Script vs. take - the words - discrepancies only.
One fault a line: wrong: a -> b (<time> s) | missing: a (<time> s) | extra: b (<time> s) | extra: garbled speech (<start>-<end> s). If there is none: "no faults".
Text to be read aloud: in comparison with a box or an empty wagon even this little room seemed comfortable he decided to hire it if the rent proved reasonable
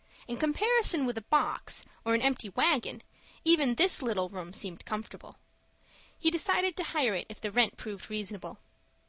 no faults